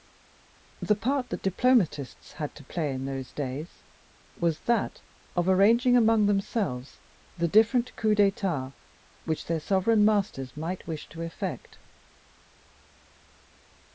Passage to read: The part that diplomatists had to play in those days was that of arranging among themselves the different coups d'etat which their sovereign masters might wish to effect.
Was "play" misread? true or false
false